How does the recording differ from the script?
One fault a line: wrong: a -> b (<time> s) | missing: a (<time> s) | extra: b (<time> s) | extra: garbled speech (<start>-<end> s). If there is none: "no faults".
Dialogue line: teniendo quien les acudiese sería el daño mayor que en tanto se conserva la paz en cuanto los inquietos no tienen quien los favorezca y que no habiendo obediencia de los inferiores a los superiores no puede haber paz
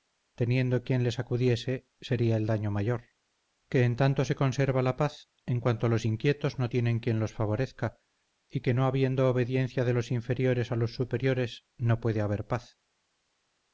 no faults